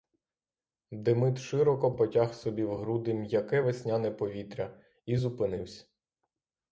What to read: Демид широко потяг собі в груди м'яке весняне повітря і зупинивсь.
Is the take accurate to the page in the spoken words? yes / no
yes